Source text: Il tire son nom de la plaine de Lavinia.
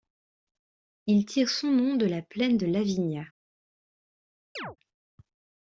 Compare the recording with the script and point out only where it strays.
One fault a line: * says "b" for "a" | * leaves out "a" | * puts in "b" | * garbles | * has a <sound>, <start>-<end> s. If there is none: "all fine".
* has a chirp, 4.6-4.8 s